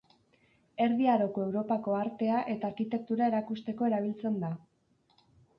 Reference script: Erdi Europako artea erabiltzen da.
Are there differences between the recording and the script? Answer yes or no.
yes